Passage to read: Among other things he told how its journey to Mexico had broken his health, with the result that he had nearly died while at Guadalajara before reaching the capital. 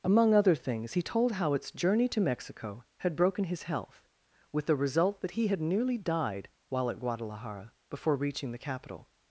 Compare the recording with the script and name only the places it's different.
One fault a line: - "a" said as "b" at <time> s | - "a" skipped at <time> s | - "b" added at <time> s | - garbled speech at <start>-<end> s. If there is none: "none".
none